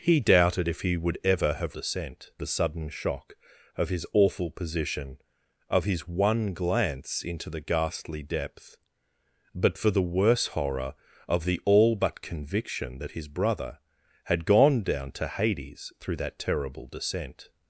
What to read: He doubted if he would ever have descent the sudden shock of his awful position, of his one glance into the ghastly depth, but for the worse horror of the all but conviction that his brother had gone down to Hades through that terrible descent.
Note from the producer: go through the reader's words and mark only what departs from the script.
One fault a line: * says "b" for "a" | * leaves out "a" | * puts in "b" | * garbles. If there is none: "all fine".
all fine